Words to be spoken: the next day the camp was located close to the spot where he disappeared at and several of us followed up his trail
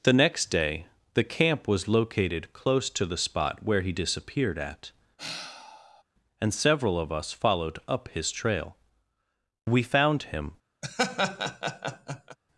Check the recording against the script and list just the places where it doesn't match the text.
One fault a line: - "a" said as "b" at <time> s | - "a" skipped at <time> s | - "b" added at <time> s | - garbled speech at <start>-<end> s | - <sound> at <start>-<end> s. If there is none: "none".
- sigh at 5.2-6.0 s
- "we found him" added at 9.7 s
- laugh at 10.8-12.4 s